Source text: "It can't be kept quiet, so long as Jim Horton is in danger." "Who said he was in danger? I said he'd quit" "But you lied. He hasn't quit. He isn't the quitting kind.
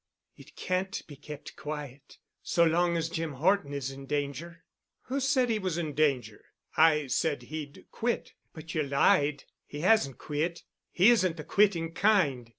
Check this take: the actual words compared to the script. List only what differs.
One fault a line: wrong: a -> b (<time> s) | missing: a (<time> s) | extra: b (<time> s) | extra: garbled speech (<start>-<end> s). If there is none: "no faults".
no faults